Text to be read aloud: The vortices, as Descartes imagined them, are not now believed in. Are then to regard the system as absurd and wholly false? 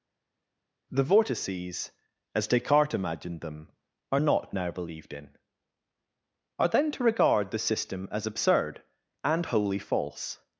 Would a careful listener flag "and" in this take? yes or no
no